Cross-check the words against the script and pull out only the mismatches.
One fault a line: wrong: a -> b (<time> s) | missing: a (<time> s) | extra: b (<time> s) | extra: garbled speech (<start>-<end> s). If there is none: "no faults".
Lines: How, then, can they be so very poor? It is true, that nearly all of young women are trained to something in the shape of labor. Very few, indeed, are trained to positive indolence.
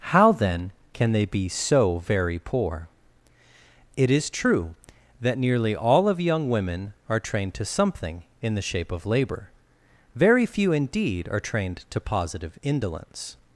no faults